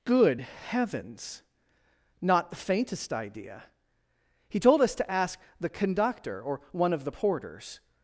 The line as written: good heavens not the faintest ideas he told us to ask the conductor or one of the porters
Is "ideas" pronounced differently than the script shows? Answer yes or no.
yes